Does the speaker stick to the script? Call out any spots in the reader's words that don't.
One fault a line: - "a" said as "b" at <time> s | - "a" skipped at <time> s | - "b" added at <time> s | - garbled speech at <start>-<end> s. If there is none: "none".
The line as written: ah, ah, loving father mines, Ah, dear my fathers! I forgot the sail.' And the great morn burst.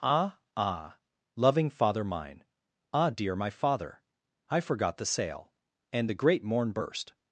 - "mines" said as "mine" at 2.0 s
- "fathers" said as "father" at 3.5 s